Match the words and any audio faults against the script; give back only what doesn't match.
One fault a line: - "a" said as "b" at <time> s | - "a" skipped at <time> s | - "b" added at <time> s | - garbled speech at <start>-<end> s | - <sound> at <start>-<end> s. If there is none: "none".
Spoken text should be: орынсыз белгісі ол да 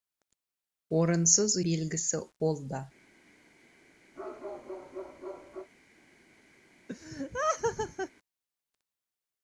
- bark at 4.1-5.7 s
- laugh at 6.9-8.1 s